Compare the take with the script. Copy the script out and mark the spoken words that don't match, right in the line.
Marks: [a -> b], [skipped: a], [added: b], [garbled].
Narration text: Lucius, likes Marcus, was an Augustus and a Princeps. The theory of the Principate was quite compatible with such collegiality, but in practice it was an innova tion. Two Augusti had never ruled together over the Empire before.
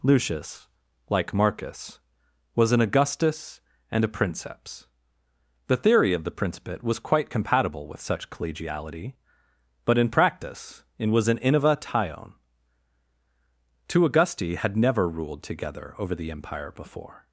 Lucius, [likes -> like] Marcus, was an Augustus and a Princeps. The theory of the Principate was quite compatible with such collegiality, but in practice it was an innova tion. Two Augusti had never ruled together over the Empire before.